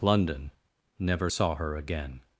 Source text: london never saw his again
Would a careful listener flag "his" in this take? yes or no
yes